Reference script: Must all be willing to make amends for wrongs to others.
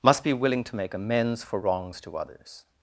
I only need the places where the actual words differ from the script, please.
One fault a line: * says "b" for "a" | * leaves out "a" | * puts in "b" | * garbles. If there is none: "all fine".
* leaves out "all"